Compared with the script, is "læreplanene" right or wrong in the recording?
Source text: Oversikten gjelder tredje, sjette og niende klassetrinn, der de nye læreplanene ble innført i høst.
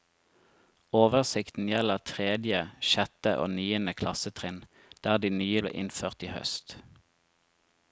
wrong